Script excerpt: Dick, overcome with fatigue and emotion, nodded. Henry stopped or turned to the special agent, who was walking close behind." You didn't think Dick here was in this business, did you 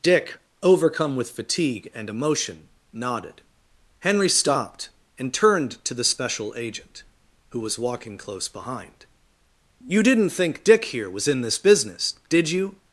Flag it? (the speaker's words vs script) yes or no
yes